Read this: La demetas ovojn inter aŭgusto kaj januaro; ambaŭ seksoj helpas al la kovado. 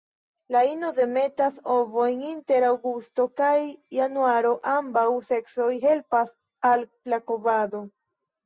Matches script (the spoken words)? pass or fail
fail